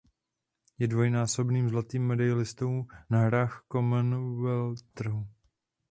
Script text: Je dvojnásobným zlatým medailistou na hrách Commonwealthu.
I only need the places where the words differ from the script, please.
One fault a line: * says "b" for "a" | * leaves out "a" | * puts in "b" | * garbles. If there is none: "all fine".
all fine